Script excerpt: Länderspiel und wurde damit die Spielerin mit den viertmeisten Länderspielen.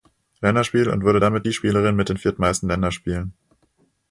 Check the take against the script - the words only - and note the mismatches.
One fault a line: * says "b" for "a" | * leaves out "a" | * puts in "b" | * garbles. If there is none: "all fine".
all fine